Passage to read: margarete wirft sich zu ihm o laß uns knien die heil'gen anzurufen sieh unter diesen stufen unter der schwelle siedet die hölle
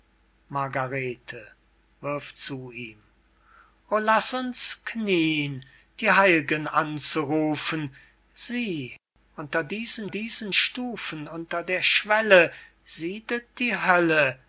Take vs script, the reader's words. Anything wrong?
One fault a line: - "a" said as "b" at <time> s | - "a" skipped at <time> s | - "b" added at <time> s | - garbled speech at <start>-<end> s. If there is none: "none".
- "sich" skipped at 2.4 s
- "diesen" added at 10.1 s